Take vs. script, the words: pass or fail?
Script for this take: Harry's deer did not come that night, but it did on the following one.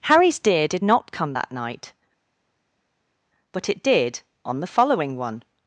pass